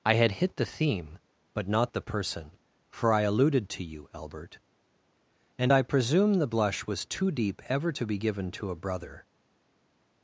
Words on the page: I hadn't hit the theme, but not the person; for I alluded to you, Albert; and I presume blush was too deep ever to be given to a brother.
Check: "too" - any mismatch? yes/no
no